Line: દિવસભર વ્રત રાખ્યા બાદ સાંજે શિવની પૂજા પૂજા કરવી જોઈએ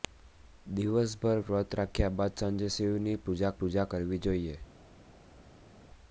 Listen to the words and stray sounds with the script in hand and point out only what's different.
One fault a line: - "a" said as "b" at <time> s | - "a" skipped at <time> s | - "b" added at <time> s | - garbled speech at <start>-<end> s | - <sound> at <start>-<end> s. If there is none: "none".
none